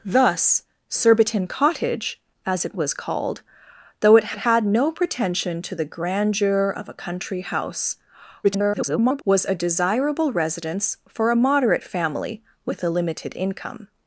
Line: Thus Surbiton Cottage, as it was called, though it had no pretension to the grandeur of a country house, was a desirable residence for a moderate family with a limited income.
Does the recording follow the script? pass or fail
fail